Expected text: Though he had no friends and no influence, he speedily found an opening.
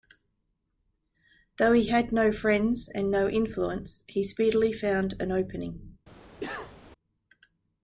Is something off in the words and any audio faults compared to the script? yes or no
yes